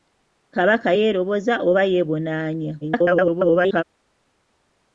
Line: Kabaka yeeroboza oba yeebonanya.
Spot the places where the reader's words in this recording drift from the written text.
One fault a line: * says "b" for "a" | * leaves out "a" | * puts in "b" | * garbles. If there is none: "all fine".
* garbles